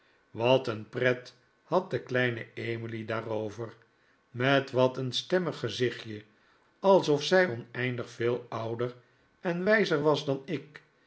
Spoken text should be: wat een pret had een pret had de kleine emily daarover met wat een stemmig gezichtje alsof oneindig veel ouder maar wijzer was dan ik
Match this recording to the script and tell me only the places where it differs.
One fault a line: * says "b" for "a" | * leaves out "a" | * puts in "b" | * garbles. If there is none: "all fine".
* leaves out "een pret had"
* puts in "zij"
* says "en" for "maar"